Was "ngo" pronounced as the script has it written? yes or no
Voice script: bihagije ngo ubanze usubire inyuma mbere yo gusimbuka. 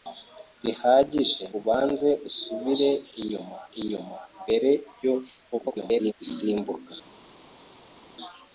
no